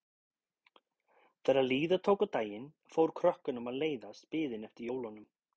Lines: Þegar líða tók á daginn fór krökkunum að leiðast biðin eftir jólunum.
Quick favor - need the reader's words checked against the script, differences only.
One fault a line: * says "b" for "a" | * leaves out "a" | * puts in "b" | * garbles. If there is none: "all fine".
all fine